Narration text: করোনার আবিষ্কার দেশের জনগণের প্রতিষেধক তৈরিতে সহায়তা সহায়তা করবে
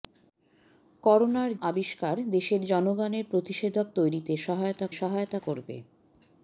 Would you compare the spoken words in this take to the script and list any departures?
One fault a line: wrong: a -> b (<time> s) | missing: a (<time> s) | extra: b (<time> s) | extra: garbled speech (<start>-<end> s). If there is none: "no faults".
no faults